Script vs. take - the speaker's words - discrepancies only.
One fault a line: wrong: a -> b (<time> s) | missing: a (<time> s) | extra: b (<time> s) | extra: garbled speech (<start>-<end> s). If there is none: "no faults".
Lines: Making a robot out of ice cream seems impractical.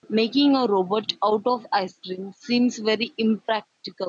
extra: very (2.8 s)